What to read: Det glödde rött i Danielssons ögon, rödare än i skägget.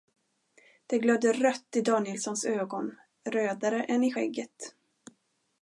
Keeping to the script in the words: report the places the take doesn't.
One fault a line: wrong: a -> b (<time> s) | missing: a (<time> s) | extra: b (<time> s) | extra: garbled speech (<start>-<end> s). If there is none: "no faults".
no faults